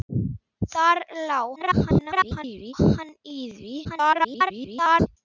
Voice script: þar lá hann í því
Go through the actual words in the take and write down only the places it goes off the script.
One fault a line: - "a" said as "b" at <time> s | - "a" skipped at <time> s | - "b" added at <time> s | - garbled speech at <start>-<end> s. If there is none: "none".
- garbled speech at 1.6-2.7 s
- garbled speech at 3.8-5.1 s